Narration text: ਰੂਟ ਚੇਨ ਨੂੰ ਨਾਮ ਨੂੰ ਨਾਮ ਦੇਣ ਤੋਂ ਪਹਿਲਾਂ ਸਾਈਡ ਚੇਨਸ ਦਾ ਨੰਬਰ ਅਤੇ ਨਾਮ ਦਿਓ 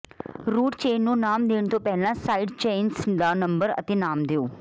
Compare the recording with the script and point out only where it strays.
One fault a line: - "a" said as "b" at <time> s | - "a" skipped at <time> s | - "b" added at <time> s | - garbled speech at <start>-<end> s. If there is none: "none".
- "ਨੂੰ ਨਾਮ" skipped at 1.5 s